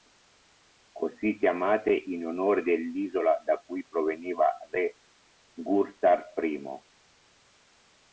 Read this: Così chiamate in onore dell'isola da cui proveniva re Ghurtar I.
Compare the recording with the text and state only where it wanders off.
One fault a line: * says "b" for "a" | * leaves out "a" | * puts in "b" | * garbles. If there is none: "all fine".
all fine